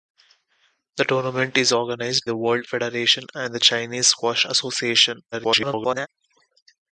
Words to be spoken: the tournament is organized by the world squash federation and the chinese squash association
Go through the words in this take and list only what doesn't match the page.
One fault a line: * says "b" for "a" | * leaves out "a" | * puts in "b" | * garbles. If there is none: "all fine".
* leaves out "by"
* leaves out "squash"
* garbles